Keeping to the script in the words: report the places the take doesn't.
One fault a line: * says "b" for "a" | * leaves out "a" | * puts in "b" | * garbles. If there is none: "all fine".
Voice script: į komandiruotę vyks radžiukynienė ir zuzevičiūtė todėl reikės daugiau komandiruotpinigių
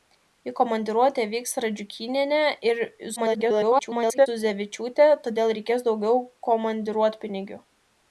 * garbles